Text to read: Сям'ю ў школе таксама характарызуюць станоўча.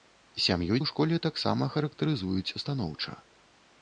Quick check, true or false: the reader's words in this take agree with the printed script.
true